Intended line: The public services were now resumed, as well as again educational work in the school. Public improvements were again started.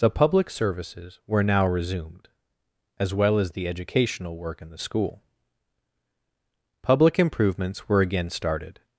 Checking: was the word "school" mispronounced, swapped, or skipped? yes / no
no